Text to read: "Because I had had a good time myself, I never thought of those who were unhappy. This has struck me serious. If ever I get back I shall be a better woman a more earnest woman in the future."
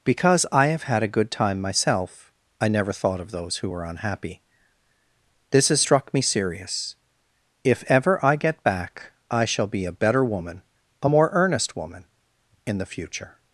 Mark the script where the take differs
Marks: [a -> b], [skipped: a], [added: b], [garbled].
"Because I [had -> have] had a good time myself, I never thought of those who were unhappy. This has struck me serious. If ever I get back I shall be a better woman a more earnest woman in the future."